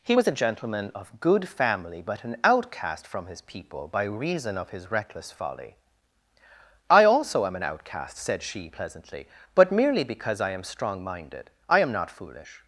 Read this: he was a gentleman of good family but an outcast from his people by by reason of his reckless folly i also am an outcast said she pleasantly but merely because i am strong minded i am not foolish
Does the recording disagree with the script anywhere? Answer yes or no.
yes